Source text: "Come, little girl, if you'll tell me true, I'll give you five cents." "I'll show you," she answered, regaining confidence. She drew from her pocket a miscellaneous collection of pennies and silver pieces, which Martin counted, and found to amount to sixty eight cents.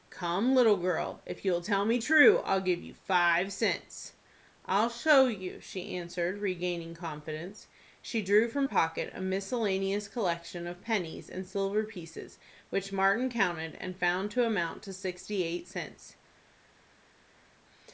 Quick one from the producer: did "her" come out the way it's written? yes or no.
no